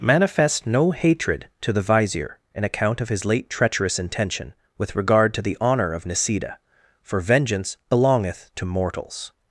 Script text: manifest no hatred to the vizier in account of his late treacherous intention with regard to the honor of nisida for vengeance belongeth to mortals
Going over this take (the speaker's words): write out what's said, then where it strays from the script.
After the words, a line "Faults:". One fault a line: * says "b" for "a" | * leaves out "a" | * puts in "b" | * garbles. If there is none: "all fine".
manifest no hatred to the vizier in account of his late treacherous intention with regard to the honor of nisida for vengeance belongeth to mortals
Faults:
all fine